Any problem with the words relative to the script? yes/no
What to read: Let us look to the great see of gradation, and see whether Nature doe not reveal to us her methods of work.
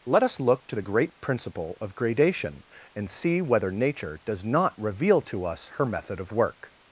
yes